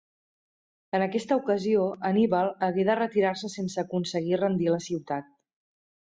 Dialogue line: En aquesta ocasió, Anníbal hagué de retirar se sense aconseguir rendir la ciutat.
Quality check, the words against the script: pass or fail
pass